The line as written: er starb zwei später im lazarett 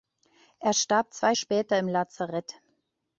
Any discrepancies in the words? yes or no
no